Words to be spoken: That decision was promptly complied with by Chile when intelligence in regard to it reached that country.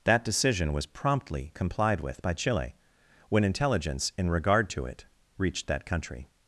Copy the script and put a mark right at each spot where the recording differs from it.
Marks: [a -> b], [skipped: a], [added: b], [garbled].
That decision was promptly complied with by Chile when intelligence in regard to it reached that country.